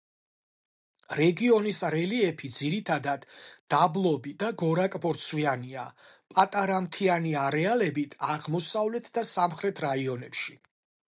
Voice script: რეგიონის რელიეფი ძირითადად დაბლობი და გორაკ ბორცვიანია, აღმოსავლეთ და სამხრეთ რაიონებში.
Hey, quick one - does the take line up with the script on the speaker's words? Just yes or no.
no